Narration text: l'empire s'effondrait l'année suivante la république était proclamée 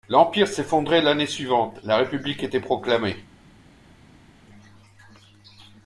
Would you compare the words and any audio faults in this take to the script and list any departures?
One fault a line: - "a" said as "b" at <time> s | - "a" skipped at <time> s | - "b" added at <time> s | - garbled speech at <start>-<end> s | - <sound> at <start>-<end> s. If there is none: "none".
none